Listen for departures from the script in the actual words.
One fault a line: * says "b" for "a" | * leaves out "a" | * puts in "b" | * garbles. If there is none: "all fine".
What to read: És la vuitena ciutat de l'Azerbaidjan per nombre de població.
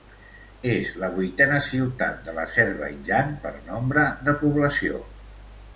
all fine